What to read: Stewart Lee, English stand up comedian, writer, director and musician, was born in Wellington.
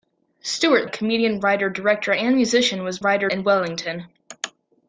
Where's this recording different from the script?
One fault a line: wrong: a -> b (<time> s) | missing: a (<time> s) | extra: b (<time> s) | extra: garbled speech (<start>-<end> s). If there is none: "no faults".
missing: Lee English stand (0.9 s)
wrong: born -> writer (3.0 s)